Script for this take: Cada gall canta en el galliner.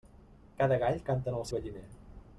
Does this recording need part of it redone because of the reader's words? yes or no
no